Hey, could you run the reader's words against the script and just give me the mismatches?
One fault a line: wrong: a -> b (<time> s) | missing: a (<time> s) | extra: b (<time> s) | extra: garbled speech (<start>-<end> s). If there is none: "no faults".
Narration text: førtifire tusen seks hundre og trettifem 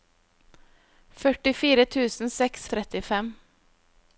missing: hundre (2.7 s)